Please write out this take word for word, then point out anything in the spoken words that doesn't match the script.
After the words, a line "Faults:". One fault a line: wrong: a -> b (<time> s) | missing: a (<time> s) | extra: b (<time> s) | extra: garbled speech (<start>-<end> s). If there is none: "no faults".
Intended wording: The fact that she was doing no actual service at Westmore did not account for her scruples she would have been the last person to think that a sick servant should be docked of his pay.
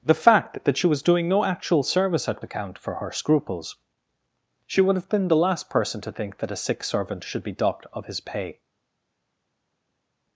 The fact that she was doing no actual service at Account for her scruples she would have been the last person to think that a sick servant should be docked of his pay.
Faults:
missing: Westmore did not (2.4 s)